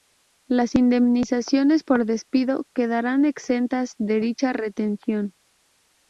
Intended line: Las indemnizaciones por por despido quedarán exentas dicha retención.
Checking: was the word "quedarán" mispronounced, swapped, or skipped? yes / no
no